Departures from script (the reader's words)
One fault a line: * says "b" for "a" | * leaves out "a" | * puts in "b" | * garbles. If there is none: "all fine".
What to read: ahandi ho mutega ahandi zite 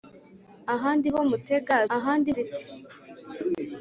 all fine